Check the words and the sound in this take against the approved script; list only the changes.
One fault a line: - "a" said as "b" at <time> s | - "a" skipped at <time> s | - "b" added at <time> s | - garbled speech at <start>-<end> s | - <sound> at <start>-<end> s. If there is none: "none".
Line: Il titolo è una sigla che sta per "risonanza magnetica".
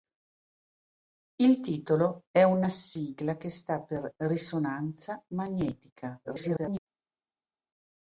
- garbled speech at 6.2-6.8 s